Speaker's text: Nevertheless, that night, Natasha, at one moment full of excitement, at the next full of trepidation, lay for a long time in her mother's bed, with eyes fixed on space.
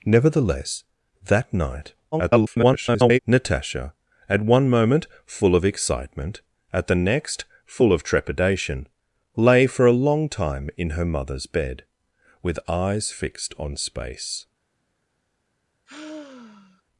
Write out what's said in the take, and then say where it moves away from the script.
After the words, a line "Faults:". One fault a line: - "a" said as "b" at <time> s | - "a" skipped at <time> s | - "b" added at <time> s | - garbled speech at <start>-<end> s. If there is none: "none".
Nevertheless, that night, [garbled] Natasha, at one moment full of excitement, at the next full of trepidation, lay for a long time in her mother's bed, with eyes fixed on space.
Faults:
- garbled speech at 2.1-3.2 s